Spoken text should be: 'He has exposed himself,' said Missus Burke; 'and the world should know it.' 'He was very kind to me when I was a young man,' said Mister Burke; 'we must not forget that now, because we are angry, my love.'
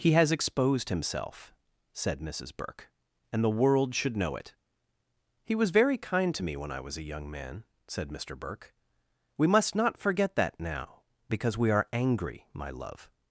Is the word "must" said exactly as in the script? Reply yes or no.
yes